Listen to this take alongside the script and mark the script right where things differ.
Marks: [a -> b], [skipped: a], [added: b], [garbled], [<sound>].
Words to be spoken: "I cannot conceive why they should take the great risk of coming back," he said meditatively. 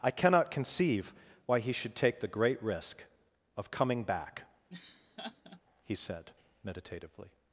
"I cannot conceive why [they -> he] should take the great risk of coming back," [laugh] he said meditatively.